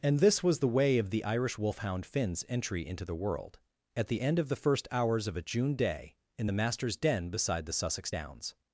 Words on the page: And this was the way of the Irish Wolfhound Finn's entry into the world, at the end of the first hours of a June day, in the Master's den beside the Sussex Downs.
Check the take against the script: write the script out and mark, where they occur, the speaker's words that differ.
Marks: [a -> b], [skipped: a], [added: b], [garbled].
And this was the way of the Irish Wolfhound Finn's entry into the world, at the end of the first hours of a June day, in the Master's den beside the Sussex Downs.